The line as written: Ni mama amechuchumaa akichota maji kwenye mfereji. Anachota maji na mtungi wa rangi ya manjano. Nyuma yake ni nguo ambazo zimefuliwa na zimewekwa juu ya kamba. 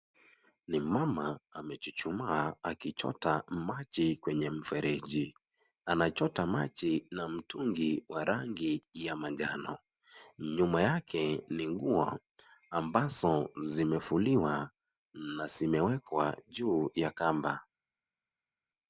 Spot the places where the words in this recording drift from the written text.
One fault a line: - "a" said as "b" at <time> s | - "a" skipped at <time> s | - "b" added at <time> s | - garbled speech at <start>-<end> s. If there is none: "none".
none